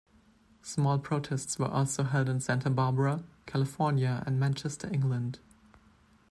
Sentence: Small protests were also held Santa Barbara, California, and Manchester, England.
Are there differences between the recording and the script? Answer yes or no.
yes